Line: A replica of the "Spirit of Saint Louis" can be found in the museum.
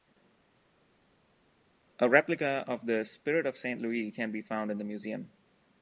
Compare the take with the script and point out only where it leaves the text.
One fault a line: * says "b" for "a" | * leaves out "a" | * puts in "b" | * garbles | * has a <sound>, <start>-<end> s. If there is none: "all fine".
all fine